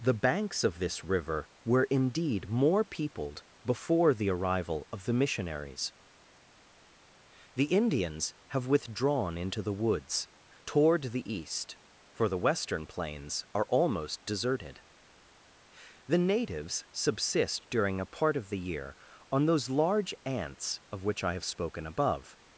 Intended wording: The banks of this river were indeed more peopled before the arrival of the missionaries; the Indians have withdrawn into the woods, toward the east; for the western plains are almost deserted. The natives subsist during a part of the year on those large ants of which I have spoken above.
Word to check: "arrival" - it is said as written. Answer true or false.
true